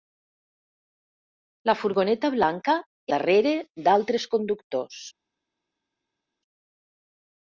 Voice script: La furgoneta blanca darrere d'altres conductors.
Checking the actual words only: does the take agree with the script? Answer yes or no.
yes